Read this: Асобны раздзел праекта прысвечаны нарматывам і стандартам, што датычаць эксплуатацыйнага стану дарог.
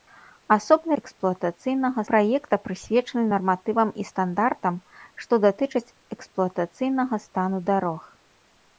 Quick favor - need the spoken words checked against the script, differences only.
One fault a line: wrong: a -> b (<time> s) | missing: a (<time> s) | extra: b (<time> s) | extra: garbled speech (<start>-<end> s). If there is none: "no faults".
wrong: раздзел -> эксплуатацыйнага (1.0 s)